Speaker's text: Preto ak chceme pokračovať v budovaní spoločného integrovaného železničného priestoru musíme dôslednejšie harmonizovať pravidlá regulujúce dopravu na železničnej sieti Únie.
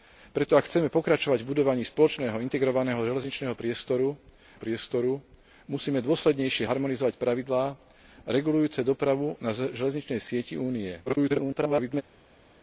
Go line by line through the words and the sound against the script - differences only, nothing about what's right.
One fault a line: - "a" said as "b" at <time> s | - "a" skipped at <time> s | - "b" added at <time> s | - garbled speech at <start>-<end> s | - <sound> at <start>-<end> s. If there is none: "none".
- "priestoru" added at 4.5 s
- garbled speech at 11.1-12.0 s